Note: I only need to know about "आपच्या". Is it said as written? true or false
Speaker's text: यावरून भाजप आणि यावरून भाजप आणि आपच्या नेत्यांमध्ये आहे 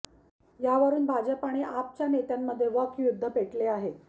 false